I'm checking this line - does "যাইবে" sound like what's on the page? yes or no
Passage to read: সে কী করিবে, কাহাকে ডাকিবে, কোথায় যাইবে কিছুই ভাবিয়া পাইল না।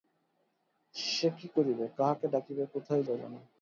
no